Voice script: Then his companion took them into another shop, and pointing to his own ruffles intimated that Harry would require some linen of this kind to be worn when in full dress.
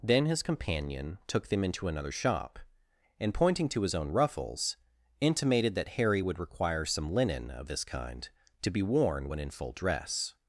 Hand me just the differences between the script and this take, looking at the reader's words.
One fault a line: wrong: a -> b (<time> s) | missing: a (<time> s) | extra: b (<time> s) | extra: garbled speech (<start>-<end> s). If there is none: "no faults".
no faults